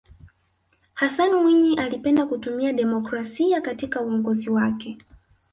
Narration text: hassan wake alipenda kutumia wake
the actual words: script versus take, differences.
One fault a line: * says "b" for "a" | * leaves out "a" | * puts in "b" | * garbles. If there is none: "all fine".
* says "mwinyi" for "wake"
* puts in "demokrasia katika uongozi"